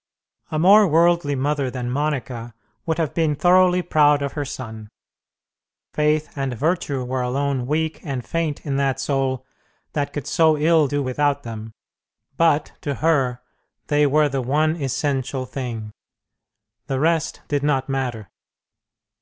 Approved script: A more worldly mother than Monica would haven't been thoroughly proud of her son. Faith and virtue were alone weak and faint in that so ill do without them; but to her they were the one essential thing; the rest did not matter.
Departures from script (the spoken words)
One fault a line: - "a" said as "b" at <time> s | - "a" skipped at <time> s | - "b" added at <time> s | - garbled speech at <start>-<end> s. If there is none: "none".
- "haven't" said as "have" at 3.0 s
- "soul that could" added at 9.0 s